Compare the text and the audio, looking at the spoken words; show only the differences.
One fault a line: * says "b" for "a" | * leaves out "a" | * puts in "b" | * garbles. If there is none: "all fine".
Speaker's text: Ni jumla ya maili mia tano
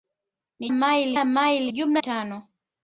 * says "maili" for "jumla"
* says "jumla" for "mia"